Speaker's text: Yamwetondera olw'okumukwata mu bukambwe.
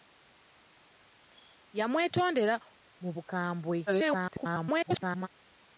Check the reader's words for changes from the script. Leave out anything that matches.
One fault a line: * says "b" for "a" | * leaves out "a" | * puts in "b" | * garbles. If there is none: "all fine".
* leaves out "olw'okumukwata"
* garbles